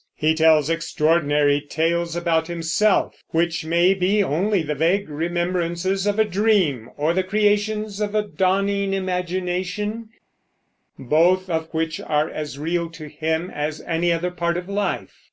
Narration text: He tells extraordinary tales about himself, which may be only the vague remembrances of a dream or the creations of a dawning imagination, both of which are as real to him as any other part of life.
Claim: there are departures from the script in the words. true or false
false